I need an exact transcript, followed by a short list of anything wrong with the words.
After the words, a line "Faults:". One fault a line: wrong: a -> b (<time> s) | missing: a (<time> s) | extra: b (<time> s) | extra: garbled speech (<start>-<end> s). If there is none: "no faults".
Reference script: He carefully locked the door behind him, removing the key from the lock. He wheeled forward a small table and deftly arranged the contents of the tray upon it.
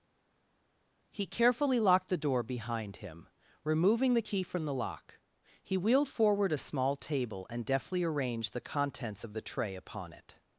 He carefully locked the door behind him, removing the key from the lock. He wheeled forward a small table and deftly arranged the contents of the tray upon it.
Faults:
no faults